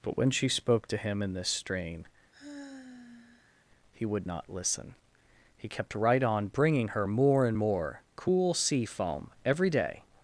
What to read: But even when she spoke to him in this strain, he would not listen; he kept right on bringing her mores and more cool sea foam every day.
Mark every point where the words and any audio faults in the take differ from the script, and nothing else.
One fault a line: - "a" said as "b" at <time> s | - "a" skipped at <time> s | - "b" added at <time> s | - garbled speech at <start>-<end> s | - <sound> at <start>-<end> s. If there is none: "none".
- "even" skipped at 0.2 s
- sigh at 2.3-3.7 s
- "mores" said as "more" at 7.1 s